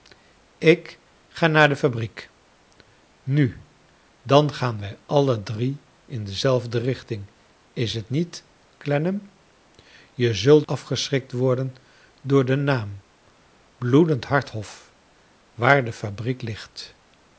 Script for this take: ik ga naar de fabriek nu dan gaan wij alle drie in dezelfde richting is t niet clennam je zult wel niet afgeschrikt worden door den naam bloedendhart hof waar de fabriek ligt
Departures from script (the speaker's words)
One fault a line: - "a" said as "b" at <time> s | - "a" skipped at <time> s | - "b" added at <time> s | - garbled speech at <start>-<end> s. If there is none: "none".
- "wel niet" skipped at 10.7 s